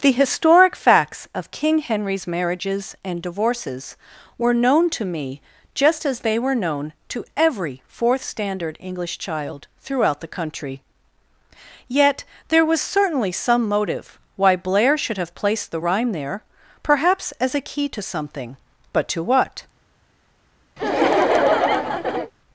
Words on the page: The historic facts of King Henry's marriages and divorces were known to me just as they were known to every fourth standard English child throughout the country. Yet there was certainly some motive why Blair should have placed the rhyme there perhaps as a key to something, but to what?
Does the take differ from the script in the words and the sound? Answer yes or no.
yes